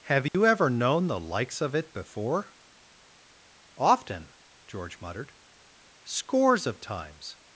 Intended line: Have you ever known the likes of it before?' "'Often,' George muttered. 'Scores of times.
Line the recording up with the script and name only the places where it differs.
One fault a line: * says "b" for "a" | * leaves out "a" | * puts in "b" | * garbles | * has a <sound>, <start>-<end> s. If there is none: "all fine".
* has a dropout, 0.3-0.3 s